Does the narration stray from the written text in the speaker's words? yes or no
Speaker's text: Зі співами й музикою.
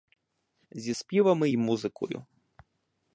no